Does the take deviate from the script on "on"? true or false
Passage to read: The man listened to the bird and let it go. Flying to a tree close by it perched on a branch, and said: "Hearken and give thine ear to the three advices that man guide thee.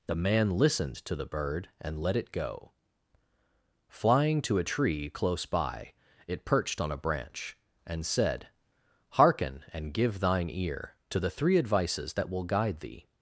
false